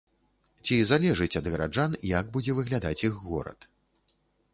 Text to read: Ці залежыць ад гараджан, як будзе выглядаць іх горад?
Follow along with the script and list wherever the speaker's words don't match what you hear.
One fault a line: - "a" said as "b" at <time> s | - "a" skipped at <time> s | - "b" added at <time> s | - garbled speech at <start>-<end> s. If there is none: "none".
none